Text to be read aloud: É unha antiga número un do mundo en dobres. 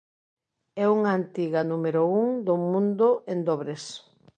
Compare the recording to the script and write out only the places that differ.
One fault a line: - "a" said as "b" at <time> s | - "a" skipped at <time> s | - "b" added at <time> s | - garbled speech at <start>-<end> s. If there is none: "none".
none